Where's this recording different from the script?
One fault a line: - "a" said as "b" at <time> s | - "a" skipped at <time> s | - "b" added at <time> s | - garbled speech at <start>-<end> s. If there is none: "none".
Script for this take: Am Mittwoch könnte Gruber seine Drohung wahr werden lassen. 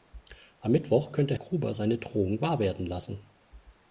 none